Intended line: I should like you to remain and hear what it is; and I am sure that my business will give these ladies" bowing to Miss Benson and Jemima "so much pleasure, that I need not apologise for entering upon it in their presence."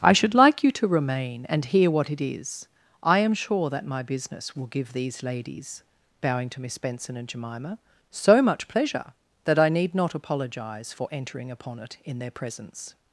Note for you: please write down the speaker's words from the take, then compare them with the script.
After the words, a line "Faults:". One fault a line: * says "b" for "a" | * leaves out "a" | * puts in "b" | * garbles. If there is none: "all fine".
I should like you to remain and hear what it is; I am sure that my business will give these ladies" bowing to Miss Benson and Jemima "so much pleasure, that I need not apologise for entering upon it in their presence."
Faults:
* leaves out "and"